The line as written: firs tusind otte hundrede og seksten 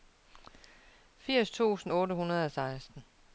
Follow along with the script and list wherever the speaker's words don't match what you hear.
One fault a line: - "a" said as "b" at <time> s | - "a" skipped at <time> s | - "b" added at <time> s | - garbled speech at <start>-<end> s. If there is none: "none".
none